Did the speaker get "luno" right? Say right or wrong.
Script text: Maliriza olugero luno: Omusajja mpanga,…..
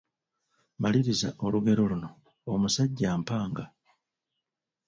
right